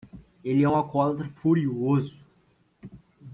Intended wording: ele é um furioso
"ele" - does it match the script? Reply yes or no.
yes